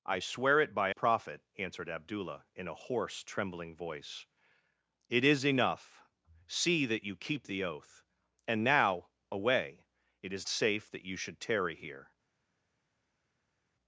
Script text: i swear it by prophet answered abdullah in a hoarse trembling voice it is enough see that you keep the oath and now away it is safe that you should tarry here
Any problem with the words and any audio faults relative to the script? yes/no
no